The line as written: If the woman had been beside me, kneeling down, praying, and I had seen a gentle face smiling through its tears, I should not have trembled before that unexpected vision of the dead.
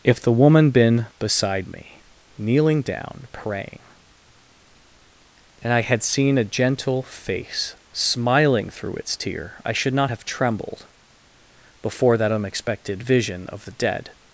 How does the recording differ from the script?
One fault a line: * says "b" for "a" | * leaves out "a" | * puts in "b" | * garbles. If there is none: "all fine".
* leaves out "had"
* says "tear" for "tears"